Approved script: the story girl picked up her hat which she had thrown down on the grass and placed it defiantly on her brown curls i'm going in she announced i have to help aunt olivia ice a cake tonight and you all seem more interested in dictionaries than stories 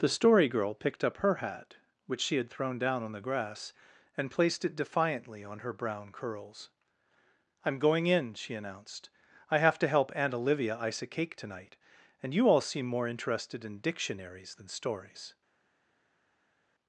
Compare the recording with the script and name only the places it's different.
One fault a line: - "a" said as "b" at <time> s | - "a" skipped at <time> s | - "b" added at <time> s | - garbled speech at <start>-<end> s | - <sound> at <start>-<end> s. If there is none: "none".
none